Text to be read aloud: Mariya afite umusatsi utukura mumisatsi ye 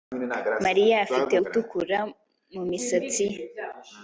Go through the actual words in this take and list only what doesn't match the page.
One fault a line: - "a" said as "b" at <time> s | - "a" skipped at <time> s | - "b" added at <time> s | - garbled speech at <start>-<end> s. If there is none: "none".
- "umusatsi" skipped at 1.3 s